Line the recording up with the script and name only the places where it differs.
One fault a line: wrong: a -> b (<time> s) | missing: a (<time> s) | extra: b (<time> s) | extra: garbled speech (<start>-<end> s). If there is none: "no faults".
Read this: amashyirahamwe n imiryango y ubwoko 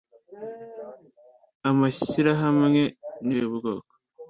missing: imiryango (3.3 s)